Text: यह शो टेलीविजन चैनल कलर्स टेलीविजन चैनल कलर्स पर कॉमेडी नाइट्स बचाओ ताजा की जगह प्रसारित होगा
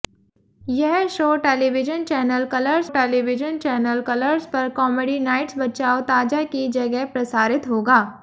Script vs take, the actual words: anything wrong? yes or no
no